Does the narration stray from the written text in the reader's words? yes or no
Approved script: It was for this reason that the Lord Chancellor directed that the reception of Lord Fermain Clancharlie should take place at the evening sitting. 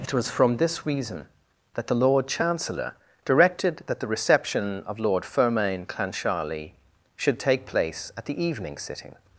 yes